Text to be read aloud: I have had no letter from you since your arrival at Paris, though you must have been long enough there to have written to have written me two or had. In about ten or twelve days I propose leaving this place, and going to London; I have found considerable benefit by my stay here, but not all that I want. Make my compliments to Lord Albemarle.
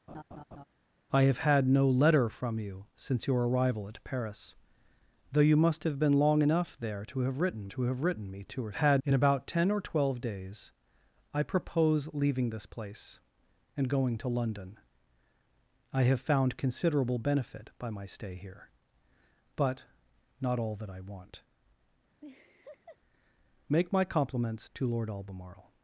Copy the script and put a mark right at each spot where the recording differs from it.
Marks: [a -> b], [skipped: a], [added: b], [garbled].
I have had no letter from you since your arrival at Paris, though you must have been long enough there to have written to have written me two or had. In about ten or twelve days I propose leaving this place, and going to London; I have found considerable benefit by my stay here, but not all that I want. Make my compliments to Lord Albemarle.